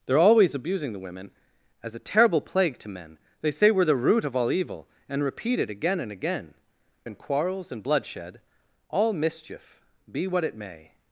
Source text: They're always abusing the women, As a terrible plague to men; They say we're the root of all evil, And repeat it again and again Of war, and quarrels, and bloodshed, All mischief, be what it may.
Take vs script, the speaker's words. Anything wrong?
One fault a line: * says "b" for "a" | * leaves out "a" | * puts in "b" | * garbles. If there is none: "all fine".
* leaves out "Of war"